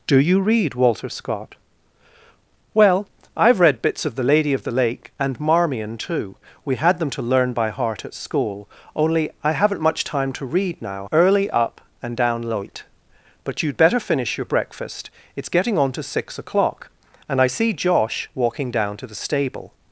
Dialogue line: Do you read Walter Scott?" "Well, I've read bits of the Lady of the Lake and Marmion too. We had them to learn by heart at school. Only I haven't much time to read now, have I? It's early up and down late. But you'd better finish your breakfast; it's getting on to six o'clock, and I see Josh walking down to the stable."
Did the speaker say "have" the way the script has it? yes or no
no